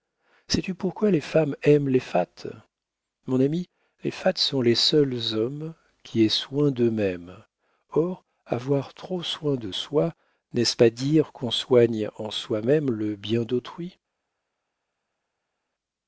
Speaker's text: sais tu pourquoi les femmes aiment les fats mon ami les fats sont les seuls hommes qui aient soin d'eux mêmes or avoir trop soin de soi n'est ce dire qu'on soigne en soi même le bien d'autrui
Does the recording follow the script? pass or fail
fail